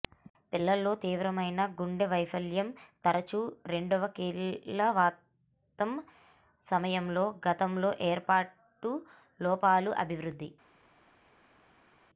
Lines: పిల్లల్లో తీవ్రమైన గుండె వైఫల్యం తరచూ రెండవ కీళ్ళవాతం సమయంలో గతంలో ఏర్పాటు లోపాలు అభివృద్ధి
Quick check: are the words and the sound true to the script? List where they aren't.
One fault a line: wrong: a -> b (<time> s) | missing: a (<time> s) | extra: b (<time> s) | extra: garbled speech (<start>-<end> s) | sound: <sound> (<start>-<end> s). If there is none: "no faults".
no faults